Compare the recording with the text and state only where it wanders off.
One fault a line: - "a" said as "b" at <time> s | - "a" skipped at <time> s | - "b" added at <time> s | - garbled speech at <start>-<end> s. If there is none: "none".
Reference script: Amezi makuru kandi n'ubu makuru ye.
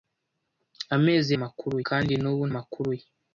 none